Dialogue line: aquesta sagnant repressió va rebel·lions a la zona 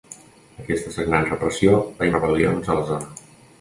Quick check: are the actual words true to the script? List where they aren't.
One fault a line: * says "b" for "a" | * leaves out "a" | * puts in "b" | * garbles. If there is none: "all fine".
all fine